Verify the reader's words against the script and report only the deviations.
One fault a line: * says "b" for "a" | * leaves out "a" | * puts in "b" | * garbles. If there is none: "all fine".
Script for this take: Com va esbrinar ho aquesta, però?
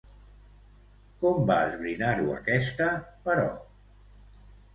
all fine